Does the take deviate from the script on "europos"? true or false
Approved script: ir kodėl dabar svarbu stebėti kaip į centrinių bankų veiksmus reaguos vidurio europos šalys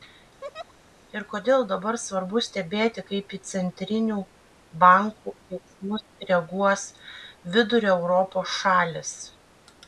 false